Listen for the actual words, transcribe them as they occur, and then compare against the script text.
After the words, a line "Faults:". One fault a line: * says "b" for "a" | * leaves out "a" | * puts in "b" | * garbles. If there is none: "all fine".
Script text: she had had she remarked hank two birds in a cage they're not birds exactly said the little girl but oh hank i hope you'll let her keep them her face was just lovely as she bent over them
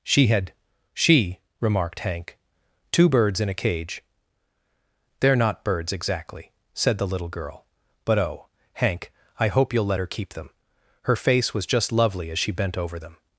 she had she remarked hank two birds in a cage they're not birds exactly said the little girl but oh hank i hope you'll let her keep them her face was just lovely as she bent over them
Faults:
* leaves out "had"